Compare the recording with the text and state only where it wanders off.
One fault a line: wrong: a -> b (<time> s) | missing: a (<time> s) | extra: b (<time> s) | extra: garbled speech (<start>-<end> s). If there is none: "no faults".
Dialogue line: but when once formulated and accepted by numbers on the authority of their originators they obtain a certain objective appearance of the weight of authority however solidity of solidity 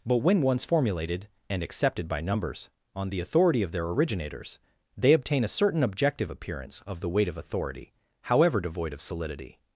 wrong: solidity -> devoid (8.6 s)